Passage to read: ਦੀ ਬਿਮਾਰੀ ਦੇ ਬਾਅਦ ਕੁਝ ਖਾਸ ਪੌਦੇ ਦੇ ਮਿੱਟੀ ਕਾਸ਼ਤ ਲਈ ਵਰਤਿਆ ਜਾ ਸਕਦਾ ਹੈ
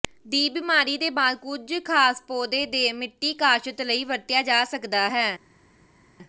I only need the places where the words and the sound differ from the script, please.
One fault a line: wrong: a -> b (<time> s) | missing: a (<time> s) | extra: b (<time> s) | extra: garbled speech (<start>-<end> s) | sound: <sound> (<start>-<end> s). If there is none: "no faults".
no faults